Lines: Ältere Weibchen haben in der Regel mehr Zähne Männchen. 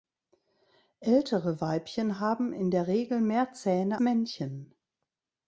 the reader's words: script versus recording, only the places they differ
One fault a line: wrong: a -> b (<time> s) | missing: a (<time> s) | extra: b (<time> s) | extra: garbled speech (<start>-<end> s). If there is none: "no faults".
no faults